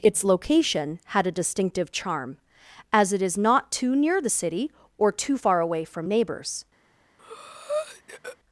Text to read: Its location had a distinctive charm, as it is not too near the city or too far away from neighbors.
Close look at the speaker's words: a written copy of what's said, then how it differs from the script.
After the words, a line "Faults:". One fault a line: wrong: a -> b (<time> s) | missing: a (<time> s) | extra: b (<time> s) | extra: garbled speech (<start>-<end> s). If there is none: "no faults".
Its location had a distinctive charm, as it is not too near the city or too far away from neighbors.
Faults:
no faults